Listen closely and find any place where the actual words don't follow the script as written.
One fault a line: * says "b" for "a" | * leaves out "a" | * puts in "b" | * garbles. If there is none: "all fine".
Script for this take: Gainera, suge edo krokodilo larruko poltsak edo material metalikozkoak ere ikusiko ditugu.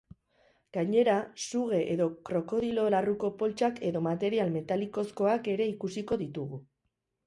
all fine